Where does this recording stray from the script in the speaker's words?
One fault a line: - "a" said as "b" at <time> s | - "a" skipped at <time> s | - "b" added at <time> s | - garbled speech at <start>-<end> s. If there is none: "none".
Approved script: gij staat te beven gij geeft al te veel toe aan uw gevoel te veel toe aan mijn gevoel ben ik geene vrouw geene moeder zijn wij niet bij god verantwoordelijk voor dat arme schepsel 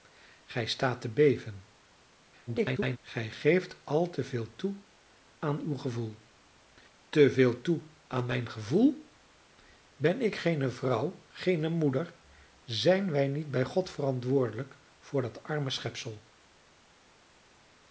- garbled speech at 2.5-3.0 s